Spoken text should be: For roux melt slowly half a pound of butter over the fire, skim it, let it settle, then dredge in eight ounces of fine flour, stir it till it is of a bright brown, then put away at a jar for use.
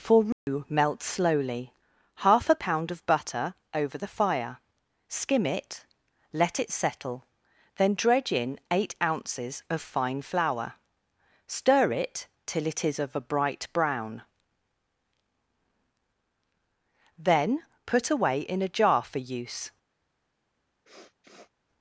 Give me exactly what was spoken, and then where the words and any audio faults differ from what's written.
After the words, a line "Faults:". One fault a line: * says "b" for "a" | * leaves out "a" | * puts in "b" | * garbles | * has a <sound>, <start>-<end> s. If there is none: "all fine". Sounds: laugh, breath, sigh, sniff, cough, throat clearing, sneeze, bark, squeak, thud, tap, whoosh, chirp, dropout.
For roux melt slowly half a pound of butter over the fire, skim it, let it settle, then dredge in eight ounces of fine flour, stir it till it is of a bright brown, then put away in a jar for use.
Faults:
* has a dropout, 0.3-0.5 s
* says "in" for "at"
* has a sniff, 20.9-21.5 s